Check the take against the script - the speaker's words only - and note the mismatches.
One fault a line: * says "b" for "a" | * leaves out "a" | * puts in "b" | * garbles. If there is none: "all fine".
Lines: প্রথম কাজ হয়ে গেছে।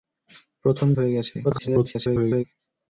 * leaves out "কাজ"
* garbles